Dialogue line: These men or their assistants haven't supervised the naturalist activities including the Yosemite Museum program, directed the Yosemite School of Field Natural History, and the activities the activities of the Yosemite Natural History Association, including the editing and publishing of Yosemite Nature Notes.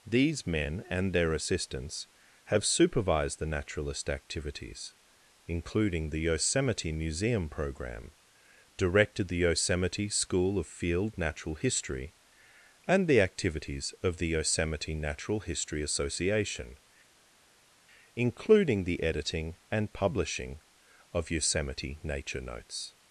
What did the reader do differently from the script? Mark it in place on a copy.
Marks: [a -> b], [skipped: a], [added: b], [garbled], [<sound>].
These men [or -> and] their assistants [haven't -> have] supervised the naturalist activities including the Yosemite Museum program, directed the Yosemite School of Field Natural History, and the activities [skipped: the activities] of the Yosemite Natural History Association, including the editing and publishing of Yosemite Nature Notes.